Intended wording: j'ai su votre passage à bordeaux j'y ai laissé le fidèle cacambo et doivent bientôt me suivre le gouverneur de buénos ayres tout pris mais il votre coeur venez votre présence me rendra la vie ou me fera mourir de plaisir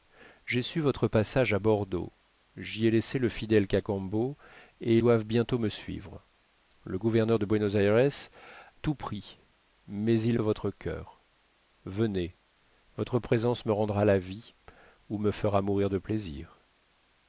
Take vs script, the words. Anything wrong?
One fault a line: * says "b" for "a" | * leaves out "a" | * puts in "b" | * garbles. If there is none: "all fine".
all fine